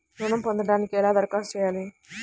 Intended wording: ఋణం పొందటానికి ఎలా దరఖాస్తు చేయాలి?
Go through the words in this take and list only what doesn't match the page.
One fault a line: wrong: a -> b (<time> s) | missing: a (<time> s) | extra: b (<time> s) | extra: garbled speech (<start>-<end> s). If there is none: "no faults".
no faults